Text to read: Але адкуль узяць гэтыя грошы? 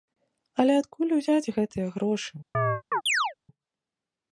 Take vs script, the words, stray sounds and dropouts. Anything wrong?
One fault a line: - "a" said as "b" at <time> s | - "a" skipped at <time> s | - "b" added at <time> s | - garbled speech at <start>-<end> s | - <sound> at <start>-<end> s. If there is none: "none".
- chirp at 2.5-3.3 s